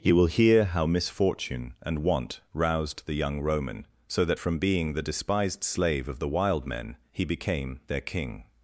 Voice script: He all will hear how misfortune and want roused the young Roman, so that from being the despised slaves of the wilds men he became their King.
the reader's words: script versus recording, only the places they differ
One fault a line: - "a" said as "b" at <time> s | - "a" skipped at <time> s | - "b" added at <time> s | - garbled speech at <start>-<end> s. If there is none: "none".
- "all" skipped at 0.1 s
- "slaves" said as "slave" at 5.6 s
- "wilds" said as "wild" at 6.3 s